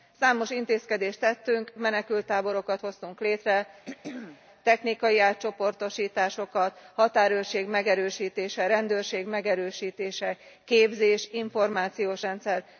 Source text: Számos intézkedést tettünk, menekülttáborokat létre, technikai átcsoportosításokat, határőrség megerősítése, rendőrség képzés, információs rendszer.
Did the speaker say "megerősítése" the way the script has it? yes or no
yes